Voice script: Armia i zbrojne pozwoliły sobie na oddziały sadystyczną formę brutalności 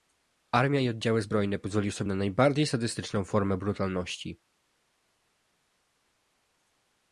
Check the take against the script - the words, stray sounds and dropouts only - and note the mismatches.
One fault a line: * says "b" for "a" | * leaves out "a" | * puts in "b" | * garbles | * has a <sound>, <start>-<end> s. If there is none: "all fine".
* puts in "oddziały"
* says "najbardziej" for "oddziały"